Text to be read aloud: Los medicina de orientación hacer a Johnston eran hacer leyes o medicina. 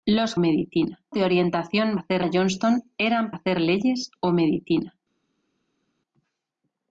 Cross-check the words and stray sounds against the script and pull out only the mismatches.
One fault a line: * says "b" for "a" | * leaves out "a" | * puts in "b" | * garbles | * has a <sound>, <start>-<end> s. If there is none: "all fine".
all fine